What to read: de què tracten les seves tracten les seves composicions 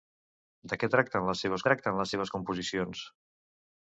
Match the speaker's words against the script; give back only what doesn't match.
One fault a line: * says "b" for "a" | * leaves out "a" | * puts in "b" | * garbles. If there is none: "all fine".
all fine